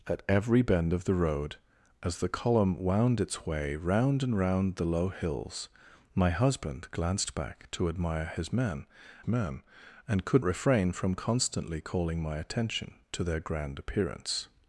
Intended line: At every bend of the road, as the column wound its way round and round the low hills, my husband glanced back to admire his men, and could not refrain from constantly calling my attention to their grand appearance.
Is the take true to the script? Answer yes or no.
no